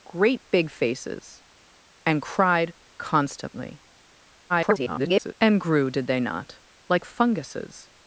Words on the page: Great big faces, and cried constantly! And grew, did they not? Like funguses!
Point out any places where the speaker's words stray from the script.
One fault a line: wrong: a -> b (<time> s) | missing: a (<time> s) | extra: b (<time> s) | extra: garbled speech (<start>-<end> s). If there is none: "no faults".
extra: garbled speech (4.5-5.3 s)